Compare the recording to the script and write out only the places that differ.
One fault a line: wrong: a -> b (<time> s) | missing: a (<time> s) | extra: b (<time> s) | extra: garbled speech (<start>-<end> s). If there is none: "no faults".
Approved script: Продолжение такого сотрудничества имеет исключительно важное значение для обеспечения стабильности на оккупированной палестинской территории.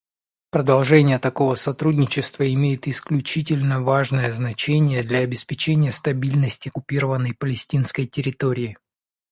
missing: на (6.7 s)